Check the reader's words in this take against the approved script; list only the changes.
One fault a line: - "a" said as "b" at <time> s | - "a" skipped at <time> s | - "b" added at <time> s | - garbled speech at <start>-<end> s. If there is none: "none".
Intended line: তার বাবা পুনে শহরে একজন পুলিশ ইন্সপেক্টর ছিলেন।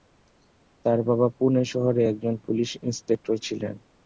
none